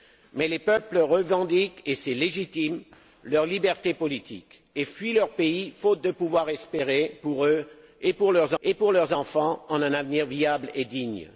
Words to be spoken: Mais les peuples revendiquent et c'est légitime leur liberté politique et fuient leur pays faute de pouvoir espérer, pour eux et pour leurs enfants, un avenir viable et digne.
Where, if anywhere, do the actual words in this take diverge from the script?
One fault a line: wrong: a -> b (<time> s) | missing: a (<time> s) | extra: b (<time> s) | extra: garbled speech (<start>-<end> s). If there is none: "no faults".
extra: et pour leurs (8.6 s)